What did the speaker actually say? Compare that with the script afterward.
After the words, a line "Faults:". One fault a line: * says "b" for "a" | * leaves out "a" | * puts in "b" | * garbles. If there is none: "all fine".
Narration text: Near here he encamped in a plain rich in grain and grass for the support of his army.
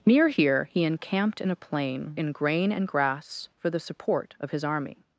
Near here he encamped in a plain in grain and grass for the support of his army.
Faults:
* leaves out "rich"